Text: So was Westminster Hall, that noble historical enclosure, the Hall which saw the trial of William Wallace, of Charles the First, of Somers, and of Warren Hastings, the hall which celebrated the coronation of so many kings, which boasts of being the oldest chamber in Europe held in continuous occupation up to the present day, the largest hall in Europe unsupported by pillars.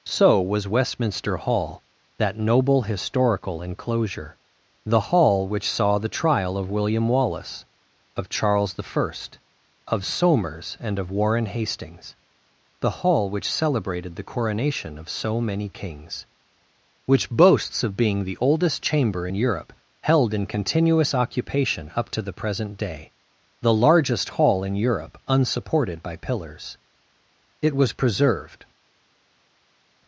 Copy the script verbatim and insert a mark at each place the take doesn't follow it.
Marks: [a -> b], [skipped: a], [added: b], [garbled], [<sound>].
So was Westminster Hall, that noble historical enclosure, the Hall which saw the trial of William Wallace, of Charles the First, of Somers, and of Warren Hastings, the hall which celebrated the coronation of so many kings, which boasts of being the oldest chamber in Europe held in continuous occupation up to the present day, the largest hall in Europe unsupported by pillars. [added: It was preserved]